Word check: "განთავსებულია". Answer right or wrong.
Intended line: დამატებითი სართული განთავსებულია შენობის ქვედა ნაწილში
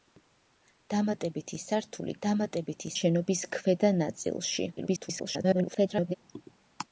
wrong